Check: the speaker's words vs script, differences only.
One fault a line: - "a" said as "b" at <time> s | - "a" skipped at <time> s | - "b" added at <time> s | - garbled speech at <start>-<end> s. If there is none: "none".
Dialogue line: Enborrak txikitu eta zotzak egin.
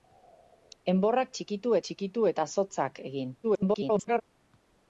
- "txikitu" added at 1.9 s
- garbled speech at 3.4-4.2 s